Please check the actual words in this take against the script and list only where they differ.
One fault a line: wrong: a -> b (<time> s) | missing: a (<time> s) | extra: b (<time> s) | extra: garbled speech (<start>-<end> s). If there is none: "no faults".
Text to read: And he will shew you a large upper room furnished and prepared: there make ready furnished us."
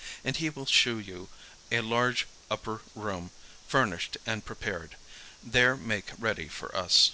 wrong: furnished -> for (6.5 s)